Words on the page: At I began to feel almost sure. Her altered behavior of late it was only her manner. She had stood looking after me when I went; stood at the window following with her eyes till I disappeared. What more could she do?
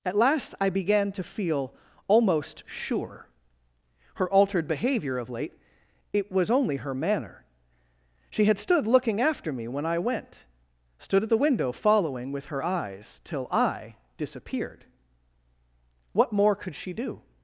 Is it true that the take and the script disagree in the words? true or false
true